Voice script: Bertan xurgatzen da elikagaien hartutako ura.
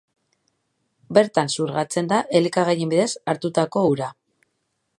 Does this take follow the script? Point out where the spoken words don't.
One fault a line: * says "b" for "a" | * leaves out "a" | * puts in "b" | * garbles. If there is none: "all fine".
* puts in "bidez"